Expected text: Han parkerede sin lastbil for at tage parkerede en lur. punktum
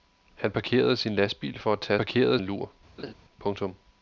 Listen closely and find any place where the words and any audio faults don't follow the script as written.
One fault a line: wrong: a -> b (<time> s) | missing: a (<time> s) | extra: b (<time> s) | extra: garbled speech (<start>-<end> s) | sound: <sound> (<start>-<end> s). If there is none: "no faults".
sound: laugh (3.0-3.1 s)